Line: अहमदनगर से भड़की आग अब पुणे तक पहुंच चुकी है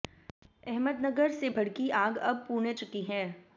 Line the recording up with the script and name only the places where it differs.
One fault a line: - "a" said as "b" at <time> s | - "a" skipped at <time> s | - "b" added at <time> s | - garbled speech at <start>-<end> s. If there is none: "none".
- "तक पहुंच" skipped at 2.7 s